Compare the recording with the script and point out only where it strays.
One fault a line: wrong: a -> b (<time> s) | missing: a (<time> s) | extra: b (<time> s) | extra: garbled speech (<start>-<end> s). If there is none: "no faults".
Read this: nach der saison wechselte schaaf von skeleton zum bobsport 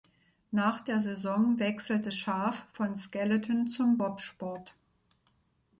no faults